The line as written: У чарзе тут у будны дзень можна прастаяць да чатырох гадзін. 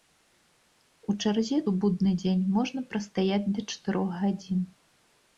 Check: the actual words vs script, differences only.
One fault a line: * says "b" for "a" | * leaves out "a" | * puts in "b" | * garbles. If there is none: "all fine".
* leaves out "тут"